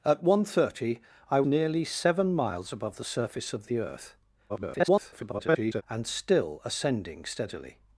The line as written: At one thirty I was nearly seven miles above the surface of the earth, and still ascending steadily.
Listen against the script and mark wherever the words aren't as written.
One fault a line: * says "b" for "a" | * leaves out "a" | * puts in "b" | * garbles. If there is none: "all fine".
* leaves out "was"
* garbles